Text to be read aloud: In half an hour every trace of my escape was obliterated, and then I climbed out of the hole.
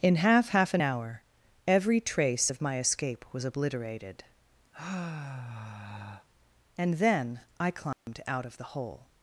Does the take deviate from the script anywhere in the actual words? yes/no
yes